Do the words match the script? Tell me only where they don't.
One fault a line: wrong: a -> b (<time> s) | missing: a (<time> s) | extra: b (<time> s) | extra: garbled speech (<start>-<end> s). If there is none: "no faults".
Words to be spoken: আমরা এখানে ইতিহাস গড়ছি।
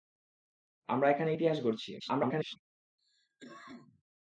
extra: garbled speech (2.0-2.6 s)